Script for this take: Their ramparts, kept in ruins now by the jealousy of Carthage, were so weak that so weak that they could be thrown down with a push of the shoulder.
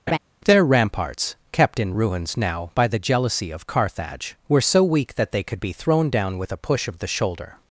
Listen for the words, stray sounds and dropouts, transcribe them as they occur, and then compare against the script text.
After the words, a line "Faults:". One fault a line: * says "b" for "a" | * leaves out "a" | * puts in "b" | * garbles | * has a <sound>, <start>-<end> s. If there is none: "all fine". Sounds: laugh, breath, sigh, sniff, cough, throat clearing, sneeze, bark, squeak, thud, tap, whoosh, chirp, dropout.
Their ramparts, kept in ruins now by the jealousy of Carthage, were so weak that they could be thrown down with a push of the shoulder.
Faults:
* has a laugh, 0.1-0.2 s
* leaves out "so weak that"